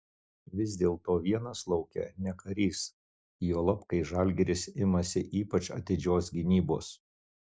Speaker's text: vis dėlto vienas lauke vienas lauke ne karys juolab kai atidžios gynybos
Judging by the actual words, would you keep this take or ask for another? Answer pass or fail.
fail